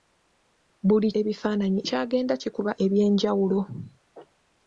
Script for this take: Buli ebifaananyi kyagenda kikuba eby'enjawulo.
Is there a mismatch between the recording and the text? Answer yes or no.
no